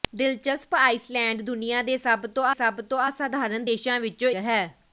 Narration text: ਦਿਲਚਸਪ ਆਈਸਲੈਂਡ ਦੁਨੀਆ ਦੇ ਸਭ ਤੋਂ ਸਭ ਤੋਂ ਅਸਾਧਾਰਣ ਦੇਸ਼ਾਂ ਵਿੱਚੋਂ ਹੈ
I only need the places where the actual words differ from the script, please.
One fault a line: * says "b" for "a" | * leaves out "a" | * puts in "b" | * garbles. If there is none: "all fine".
all fine